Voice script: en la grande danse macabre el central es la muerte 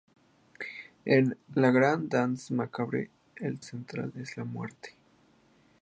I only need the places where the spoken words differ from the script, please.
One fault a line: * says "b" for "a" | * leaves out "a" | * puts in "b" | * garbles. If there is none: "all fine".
all fine